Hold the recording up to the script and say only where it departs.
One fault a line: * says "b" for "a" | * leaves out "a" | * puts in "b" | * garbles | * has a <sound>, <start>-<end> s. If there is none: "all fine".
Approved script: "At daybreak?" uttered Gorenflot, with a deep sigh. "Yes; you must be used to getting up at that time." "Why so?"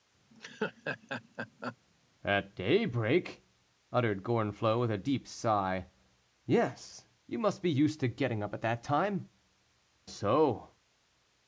* has a laugh, 0.3-1.8 s
* leaves out "Why"